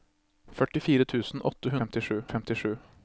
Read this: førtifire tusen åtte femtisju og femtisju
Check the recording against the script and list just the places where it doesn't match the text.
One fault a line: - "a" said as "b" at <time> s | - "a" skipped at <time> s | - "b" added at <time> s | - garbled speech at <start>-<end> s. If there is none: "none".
none